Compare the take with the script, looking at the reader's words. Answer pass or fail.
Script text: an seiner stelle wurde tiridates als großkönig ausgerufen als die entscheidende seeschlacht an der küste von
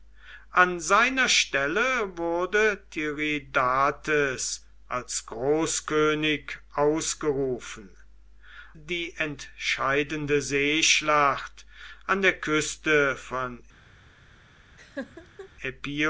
fail